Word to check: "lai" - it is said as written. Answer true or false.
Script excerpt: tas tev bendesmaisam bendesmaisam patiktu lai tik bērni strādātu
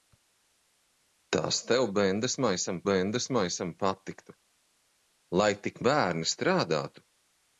true